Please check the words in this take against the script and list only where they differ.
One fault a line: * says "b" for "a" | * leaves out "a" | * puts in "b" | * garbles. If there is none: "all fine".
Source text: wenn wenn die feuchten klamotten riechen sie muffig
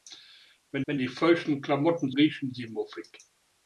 all fine